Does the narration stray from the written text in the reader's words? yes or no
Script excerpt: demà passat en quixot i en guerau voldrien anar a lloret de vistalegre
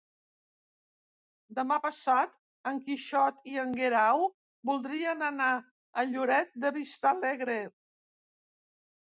no